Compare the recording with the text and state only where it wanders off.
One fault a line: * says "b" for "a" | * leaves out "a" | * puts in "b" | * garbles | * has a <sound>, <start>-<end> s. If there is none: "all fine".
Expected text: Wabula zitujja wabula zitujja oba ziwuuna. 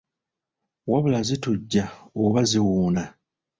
* leaves out "wabula zitujja"